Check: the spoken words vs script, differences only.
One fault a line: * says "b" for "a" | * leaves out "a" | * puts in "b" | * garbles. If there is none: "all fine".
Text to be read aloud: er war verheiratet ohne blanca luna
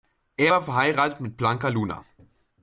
* says "mit" for "ohne"